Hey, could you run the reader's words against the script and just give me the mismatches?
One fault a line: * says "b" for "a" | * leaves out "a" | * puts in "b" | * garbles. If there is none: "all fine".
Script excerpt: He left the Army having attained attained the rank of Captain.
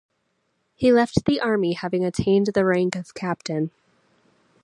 * leaves out "attained"